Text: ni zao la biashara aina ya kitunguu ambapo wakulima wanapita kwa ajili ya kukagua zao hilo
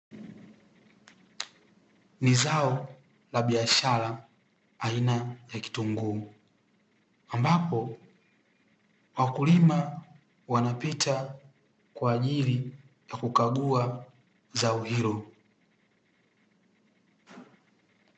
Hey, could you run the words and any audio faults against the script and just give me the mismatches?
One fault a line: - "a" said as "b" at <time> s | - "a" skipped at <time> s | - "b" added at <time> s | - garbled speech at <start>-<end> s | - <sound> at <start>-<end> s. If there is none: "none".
none